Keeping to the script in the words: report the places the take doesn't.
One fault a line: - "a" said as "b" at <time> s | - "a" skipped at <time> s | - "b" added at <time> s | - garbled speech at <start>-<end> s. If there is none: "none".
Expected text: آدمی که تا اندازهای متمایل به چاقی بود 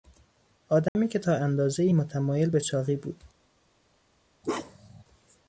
none